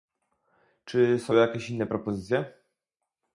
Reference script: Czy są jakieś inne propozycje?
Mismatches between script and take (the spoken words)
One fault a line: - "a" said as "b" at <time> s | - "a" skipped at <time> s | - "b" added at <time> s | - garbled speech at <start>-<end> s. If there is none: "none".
none